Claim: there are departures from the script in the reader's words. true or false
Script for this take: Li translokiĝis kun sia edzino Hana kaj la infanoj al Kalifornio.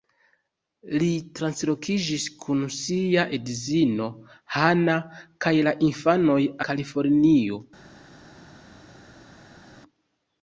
true